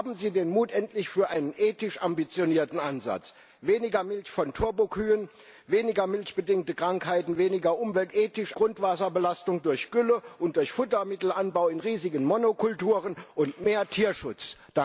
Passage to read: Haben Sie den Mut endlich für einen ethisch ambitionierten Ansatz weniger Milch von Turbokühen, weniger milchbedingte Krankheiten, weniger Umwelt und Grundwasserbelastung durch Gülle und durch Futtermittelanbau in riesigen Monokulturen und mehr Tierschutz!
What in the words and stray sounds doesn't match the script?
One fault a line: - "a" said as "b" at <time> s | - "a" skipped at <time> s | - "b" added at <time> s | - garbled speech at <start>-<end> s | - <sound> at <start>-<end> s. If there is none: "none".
- "und" said as "ethisch" at 8.1 s